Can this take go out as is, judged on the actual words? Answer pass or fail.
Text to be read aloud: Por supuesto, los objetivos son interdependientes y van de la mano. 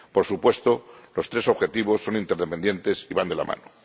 fail